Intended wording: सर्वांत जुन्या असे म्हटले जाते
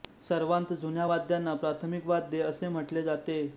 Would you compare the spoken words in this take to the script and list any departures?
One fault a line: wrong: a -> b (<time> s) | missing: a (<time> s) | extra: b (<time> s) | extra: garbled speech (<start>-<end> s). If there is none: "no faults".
extra: वाद्यांना प्राथमिक वाद्ये (1.1 s)